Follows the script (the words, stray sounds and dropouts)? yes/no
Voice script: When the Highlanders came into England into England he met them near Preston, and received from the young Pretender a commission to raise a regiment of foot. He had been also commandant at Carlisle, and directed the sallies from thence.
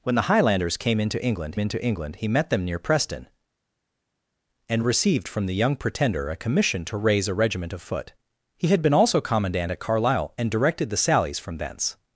yes